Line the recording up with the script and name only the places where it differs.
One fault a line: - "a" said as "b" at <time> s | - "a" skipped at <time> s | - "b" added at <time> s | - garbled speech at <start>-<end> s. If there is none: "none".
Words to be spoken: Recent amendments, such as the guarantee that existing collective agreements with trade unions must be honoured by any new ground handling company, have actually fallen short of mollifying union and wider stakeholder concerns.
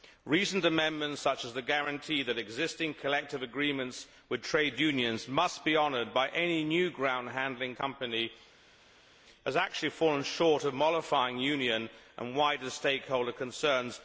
none